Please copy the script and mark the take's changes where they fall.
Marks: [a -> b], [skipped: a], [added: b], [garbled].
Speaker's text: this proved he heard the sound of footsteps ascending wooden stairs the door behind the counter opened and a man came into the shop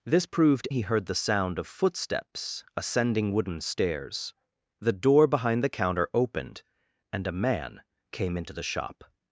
this proved he heard the sound of footsteps ascending wooden stairs the door behind the counter opened and a man came into the shop